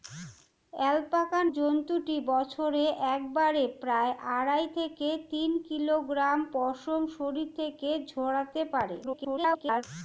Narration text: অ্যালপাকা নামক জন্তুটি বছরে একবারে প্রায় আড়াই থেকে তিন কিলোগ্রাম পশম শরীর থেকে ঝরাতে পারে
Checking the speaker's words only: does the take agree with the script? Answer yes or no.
no